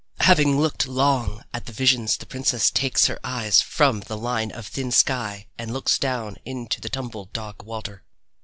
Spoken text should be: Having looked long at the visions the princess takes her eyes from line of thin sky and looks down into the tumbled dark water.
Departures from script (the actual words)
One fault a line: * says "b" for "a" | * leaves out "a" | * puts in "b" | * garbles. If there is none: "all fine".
* puts in "the"